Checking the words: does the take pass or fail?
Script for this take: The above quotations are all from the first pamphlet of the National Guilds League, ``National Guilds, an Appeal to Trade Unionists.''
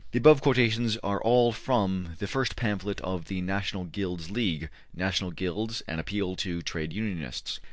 pass